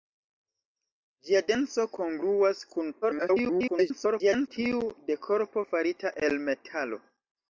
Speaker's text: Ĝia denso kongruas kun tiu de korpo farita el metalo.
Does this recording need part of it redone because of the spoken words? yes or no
yes